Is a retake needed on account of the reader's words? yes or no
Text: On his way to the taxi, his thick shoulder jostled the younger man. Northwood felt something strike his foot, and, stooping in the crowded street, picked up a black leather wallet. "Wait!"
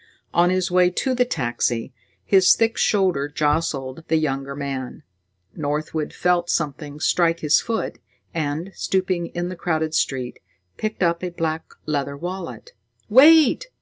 no